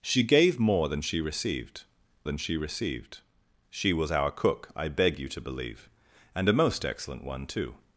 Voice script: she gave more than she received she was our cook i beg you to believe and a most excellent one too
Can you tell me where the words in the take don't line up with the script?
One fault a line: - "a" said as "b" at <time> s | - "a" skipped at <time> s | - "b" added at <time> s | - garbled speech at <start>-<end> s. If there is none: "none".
- "than she received" added at 2.2 s